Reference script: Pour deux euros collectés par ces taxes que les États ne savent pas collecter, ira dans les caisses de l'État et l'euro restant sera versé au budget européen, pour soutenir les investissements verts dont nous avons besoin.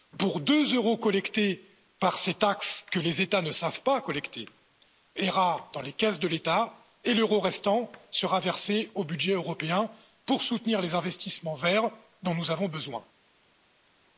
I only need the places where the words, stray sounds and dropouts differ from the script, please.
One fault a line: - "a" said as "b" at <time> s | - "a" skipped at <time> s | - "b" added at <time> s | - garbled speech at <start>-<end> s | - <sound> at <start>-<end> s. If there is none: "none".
none